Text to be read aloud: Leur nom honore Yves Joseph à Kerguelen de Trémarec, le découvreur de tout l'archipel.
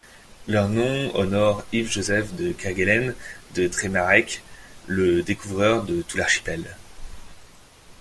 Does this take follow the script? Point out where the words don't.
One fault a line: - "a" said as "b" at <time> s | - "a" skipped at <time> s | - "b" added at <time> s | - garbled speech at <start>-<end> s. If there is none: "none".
- "à" said as "de" at 2.3 s